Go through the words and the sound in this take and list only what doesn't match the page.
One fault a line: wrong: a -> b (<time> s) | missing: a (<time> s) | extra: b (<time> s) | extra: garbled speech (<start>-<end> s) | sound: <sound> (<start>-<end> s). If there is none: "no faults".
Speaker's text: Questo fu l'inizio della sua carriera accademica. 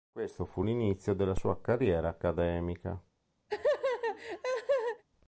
sound: laugh (3.5-5.0 s)